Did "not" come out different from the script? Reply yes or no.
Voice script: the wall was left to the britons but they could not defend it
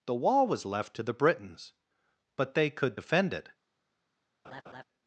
yes